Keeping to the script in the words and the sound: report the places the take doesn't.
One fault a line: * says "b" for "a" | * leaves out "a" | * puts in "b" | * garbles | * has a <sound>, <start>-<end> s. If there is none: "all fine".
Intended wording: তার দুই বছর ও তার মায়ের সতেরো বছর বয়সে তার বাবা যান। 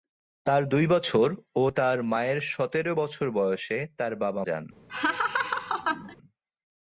* has a laugh, 4.9-6.2 s